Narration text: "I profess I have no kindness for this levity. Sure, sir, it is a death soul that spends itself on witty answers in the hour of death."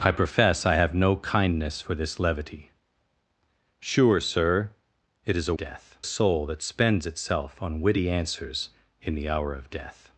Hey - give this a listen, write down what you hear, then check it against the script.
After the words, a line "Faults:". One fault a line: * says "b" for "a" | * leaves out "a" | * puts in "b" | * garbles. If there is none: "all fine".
"I profess I have no kindness for this levity. Sure, sir, it is a death soul that spends itself on witty answers in the hour of death."
Faults:
all fine